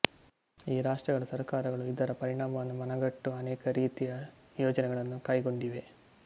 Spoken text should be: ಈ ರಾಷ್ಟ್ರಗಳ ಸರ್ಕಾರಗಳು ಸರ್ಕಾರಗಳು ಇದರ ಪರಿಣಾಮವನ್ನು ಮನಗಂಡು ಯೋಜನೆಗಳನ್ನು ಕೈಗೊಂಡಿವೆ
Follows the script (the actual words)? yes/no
no